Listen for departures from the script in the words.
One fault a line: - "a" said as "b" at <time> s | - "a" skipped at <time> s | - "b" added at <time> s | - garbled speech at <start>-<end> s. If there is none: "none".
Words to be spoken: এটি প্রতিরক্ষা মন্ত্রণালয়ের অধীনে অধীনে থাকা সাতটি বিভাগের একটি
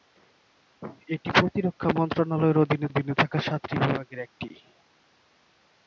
none